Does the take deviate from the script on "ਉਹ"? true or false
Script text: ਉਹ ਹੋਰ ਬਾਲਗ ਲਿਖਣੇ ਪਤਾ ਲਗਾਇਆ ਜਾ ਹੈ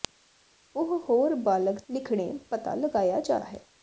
false